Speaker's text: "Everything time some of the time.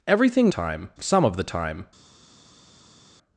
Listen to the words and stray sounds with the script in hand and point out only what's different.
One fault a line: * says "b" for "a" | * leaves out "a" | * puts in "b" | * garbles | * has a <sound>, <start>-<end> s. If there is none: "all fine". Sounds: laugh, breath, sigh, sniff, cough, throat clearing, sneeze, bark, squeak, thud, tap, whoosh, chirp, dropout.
all fine